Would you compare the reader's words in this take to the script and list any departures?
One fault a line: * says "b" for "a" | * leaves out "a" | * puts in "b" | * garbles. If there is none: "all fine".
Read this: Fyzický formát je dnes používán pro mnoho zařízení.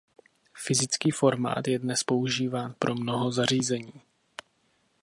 all fine